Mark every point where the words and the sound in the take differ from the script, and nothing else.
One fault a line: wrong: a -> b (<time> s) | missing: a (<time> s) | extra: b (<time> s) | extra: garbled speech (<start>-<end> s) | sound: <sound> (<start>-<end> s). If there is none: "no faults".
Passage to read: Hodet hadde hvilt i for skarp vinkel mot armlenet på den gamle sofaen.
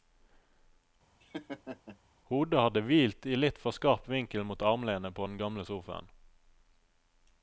sound: laugh (1.2-2.0 s)
extra: litt (3.4 s)